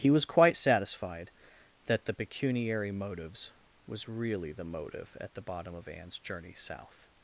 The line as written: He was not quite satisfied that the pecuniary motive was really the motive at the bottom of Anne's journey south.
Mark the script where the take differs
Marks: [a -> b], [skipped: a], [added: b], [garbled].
He was [skipped: not] quite satisfied that the pecuniary [motive -> motives] was really the motive at the bottom of Anne's journey south.